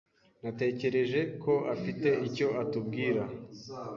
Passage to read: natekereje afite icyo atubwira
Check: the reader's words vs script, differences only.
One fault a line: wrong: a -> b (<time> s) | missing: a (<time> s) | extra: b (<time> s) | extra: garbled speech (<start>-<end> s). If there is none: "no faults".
extra: ko (1.4 s)